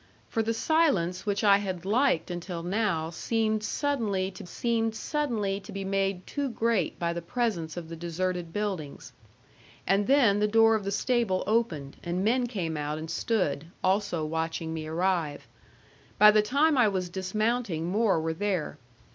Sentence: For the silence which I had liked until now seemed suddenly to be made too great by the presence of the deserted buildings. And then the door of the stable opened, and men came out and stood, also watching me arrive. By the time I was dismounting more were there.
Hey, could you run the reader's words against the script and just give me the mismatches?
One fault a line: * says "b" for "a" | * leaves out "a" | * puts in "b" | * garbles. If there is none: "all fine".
* puts in "seemed suddenly to"